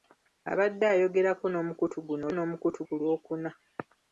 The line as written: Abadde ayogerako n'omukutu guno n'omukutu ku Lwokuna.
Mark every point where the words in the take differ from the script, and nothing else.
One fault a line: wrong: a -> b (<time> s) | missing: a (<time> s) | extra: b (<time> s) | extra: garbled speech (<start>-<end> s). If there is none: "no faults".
no faults